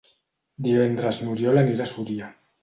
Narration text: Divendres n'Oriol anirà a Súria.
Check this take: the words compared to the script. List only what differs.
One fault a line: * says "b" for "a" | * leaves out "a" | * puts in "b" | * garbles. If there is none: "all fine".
all fine